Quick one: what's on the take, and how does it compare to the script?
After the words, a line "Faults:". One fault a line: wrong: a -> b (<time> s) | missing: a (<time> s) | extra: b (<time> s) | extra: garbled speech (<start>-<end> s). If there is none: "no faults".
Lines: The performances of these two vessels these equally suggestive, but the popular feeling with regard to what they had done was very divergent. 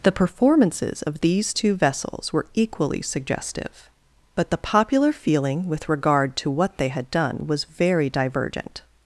The performances of these two vessels were equally suggestive, but the popular feeling with regard to what they had done was very divergent.
Faults:
wrong: these -> were (2.3 s)